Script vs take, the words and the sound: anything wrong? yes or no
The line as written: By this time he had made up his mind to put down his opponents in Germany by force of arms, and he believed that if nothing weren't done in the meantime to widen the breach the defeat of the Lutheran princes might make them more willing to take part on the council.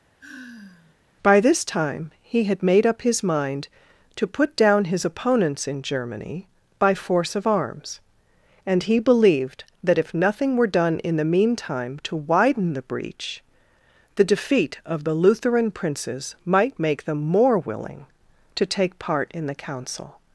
yes